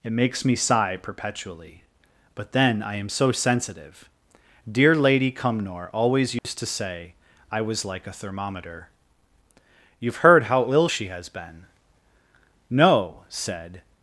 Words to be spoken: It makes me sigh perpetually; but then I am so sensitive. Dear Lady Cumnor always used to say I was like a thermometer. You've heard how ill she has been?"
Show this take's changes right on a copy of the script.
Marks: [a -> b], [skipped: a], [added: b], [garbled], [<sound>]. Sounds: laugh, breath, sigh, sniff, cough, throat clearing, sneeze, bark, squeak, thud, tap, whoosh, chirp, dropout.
It makes me sigh perpetually; but then I am so sensitive. Dear Lady Cumnor always used [dropout] to say I was like a thermometer. You've heard how ill she has been?" [added: No said]